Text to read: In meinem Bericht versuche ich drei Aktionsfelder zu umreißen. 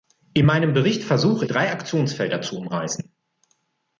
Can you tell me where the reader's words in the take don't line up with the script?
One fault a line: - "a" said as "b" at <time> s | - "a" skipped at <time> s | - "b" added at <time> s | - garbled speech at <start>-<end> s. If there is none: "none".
- "ich" skipped at 1.4 s